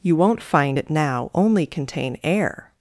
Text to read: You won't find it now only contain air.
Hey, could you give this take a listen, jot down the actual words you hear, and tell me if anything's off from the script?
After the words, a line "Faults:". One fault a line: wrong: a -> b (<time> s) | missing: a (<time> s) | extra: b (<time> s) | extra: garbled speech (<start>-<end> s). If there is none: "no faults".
You won't find it now only contain air.
Faults:
no faults